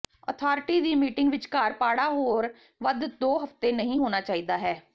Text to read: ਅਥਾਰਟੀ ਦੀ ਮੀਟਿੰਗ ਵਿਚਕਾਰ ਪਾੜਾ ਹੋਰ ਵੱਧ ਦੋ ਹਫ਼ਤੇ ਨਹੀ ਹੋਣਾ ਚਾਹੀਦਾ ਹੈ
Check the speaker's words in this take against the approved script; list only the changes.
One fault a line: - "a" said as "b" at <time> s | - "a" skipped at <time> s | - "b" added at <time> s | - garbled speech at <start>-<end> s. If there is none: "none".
none